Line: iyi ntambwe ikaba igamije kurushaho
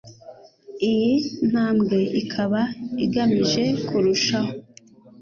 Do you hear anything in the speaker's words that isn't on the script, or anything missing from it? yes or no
no